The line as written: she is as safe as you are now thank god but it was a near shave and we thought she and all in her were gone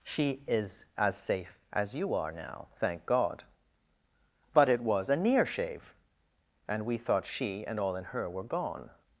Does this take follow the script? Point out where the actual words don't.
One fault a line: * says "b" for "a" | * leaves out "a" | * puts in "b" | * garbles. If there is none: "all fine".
all fine